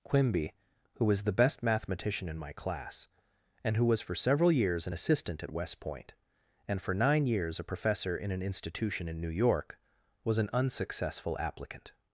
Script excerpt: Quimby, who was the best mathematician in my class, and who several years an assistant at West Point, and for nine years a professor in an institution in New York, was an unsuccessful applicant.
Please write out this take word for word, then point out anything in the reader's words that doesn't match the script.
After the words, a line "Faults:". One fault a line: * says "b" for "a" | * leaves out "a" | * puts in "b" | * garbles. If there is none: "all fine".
Quimby, who was the best mathematician in my class, and who was for several years an assistant at West Point, and for nine years a professor in an institution in New York, was an unsuccessful applicant.
Faults:
* puts in "was for"